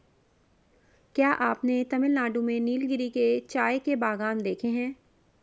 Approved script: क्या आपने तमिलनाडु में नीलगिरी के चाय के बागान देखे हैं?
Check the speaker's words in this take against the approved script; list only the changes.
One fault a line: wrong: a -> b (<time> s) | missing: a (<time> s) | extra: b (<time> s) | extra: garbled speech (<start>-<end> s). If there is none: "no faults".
no faults